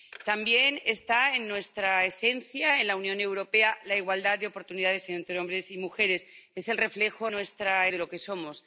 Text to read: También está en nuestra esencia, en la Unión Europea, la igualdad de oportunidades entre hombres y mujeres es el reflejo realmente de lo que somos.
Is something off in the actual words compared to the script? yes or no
yes